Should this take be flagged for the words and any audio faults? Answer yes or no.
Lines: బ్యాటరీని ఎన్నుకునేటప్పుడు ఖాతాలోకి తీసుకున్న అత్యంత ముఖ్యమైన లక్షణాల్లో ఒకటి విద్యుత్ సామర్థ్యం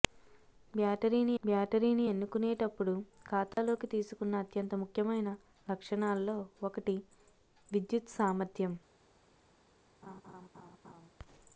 yes